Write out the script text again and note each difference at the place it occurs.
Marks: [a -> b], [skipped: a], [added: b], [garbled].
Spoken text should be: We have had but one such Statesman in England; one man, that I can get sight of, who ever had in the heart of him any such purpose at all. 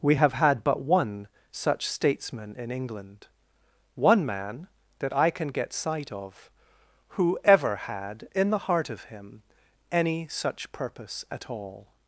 We have had but one such Statesman in England; one man, that I can get sight of, who ever had in the heart of him any such purpose at all.